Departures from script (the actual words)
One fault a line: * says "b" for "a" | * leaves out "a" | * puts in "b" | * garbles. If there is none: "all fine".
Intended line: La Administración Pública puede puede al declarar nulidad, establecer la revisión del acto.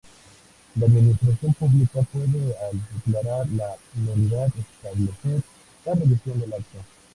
* leaves out "puede"
* puts in "la"